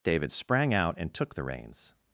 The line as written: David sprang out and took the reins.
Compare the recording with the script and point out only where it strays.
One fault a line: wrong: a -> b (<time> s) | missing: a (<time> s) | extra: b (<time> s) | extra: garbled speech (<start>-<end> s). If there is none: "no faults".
no faults